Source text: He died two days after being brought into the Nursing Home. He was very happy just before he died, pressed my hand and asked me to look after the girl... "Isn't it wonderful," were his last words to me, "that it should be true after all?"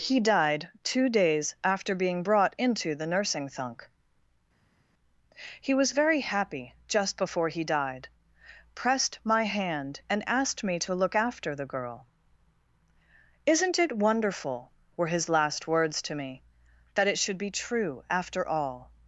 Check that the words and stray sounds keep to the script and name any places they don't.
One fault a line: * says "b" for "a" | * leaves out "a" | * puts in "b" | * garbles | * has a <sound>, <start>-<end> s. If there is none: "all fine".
* says "Thunk" for "Home"